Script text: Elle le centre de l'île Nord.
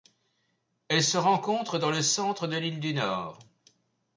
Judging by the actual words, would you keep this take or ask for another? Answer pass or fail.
fail